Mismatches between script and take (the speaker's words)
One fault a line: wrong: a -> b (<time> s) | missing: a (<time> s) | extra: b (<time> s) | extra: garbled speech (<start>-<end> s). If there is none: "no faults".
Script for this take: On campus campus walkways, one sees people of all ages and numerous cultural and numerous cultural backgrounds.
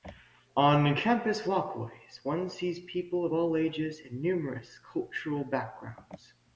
missing: campus (1.5 s)
missing: and numerous cultural (5.4 s)